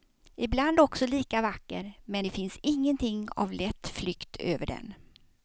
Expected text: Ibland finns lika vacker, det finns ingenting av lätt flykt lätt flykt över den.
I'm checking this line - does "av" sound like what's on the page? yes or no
yes